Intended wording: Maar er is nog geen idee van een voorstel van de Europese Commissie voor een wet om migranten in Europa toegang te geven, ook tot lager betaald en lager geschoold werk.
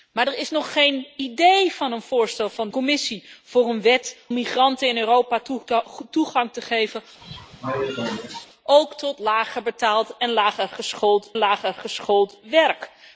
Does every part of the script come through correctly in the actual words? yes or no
no